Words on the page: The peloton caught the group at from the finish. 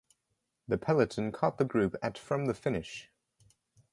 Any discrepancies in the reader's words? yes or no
no